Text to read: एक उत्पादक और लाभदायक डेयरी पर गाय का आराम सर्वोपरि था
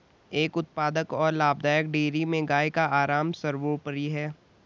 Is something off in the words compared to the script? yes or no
yes